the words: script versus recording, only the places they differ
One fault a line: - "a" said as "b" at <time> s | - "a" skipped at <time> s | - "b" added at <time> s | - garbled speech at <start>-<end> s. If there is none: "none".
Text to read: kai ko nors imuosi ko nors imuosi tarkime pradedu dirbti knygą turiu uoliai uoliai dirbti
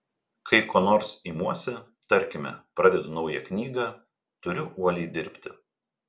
- "ko nors imuosi" skipped at 1.7 s
- "dirbti" said as "naują" at 3.2 s
- "uoliai" skipped at 5.1 s